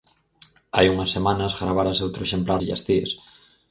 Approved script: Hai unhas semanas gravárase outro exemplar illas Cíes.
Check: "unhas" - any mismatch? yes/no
no